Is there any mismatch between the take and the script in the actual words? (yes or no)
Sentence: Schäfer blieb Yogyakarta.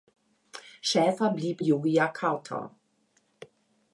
no